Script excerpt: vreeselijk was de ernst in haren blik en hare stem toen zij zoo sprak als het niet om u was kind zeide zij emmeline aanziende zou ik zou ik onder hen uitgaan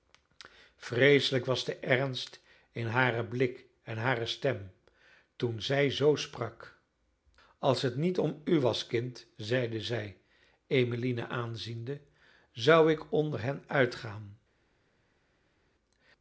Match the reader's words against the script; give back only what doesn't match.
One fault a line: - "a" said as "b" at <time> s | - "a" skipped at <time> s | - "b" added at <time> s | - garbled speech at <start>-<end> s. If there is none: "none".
- "zou ik" skipped at 13.1 s